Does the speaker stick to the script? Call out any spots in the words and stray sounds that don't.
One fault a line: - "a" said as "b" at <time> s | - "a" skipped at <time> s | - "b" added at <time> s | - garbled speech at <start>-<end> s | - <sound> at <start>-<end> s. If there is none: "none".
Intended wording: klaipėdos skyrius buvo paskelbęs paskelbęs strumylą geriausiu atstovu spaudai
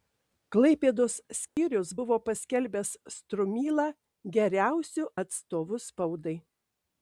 - dropout at 1.5-1.6 s
- "paskelbęs" skipped at 2.9 s